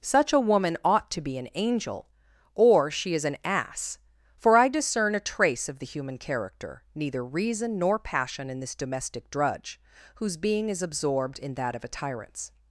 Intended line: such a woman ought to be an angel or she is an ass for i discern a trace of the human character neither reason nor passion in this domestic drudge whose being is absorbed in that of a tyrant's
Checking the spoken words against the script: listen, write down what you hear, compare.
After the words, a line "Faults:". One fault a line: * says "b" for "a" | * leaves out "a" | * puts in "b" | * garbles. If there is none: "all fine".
such a woman ought to be an angel or she is an ass for i discern a trace of the human character neither reason nor passion in this domestic drudge whose being is absorbed in that of a tyrant's
Faults:
all fine